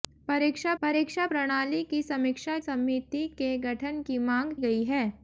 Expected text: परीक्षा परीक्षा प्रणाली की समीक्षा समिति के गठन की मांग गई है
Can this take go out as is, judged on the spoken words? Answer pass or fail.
pass